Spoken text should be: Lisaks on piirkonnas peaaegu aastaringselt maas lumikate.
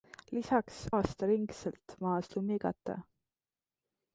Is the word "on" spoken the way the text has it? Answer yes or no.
no